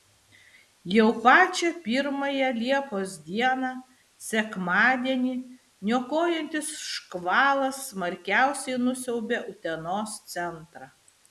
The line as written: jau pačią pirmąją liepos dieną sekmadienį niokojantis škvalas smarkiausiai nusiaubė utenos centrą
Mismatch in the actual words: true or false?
false